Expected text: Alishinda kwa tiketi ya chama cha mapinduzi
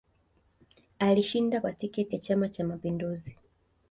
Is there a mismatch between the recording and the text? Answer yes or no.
no